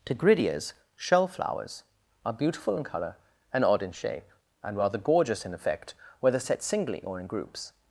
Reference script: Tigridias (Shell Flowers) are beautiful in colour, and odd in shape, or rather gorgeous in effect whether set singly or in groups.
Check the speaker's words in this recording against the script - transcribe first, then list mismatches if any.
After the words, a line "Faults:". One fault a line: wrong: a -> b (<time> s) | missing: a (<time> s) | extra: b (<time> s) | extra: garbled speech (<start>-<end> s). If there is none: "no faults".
Tigridias (Shell Flowers) are beautiful in colour, and odd in shape, and rather gorgeous in effect whether set singly or in groups.
Faults:
wrong: or -> and (4.6 s)